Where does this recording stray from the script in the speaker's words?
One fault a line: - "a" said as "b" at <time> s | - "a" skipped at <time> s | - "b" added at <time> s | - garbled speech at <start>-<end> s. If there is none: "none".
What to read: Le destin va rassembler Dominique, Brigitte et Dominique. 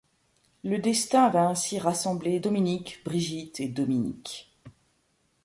- "ainsi" added at 1.5 s